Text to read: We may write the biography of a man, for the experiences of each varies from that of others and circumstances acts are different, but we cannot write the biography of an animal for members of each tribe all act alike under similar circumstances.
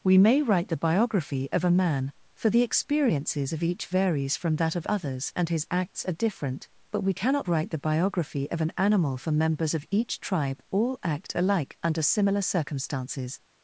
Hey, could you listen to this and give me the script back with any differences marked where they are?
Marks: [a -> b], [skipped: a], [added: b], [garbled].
We may write the biography of a man, for the experiences of each varies from that of others and [circumstances -> his] acts are different, but we cannot write the biography of an animal for members of each tribe all act alike under similar circumstances.